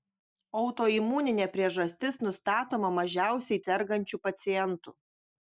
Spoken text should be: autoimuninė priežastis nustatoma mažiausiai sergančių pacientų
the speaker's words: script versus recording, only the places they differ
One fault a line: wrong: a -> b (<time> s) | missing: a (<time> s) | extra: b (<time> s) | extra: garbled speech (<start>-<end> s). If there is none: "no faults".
no faults